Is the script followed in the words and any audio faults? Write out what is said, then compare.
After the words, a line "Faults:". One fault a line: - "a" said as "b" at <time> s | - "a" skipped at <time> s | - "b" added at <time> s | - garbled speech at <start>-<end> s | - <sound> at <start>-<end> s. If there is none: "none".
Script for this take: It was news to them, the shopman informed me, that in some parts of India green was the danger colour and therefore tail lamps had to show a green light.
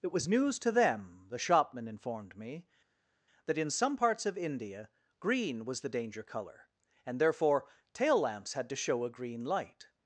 It was news to them, the shopman informed me, that in some parts of India green was the danger colour and therefore tail lamps had to show a green light.
Faults:
none